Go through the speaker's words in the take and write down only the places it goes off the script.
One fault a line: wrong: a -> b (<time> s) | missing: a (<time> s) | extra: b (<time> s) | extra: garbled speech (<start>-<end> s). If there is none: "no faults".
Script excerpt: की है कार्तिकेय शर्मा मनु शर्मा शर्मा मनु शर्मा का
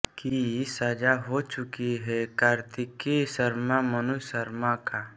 wrong: है कार्तिकेय शर्मा मनु शर्मा -> सजा हो चुकी है कार्तिकेय (0.7 s)